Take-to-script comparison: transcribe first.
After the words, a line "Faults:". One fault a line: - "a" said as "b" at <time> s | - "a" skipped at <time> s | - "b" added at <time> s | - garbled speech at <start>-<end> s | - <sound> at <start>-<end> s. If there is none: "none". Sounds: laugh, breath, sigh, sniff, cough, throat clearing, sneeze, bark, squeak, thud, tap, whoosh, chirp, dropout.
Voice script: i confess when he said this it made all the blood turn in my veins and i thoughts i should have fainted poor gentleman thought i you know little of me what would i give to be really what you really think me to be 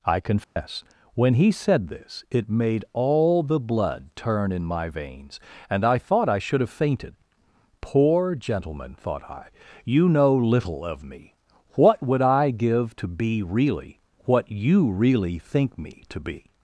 i confess when he said this it made all the blood turn in my veins and i thought i should have fainted poor gentleman thought i you know little of me what would i give to be really what you really think me to be
Faults:
- dropout at 0.4-0.6 s
- "thoughts" said as "thought" at 6.0 s